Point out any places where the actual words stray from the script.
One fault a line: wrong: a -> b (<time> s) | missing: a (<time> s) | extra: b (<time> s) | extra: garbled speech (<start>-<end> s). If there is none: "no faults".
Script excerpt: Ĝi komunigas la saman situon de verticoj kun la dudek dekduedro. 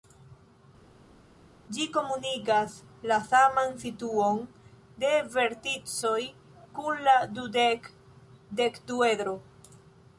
no faults